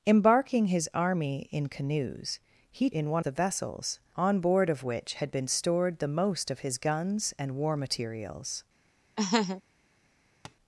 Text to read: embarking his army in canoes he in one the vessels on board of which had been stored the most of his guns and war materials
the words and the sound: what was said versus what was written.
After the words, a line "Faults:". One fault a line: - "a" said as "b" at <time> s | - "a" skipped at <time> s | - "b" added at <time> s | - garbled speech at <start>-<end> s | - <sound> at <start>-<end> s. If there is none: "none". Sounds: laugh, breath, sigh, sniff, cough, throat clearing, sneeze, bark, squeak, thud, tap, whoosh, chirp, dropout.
embarking his army in canoes he in one the vessels on board of which had been stored the most of his guns and war materials
Faults:
- laugh at 9.2-9.6 s
- tap at 10.4-10.6 s